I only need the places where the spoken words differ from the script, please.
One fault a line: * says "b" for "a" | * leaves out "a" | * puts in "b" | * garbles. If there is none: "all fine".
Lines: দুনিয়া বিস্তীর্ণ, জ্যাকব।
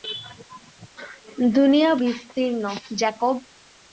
all fine